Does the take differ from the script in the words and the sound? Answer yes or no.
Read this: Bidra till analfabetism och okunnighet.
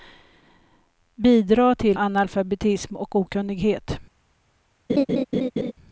yes